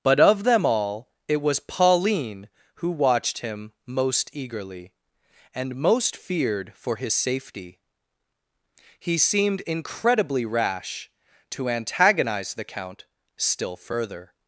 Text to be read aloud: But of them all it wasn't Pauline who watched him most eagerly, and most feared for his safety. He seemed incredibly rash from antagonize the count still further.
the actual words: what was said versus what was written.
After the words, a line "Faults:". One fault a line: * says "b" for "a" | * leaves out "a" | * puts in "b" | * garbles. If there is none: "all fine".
But of them all it was Pauline who watched him most eagerly, and most feared for his safety. He seemed incredibly rash to antagonize the count still further.
Faults:
* says "was" for "wasn't"
* says "to" for "from"